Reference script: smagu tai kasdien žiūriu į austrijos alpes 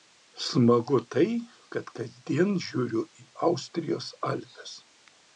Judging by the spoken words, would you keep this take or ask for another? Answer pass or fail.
fail